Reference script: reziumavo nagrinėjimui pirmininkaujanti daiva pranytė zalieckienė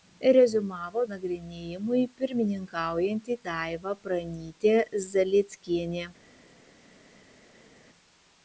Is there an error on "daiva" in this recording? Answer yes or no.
no